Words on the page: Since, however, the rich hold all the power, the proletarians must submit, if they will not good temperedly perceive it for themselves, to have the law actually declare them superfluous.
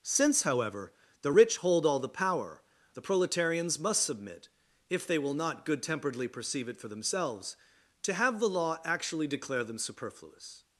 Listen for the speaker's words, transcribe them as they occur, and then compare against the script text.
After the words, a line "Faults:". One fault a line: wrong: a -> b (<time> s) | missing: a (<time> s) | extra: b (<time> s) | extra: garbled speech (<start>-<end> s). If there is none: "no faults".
Since, however, the rich hold all the power, the proletarians must submit, if they will not good temperedly perceive it for themselves, to have the law actually declare them superfluous.
Faults:
no faults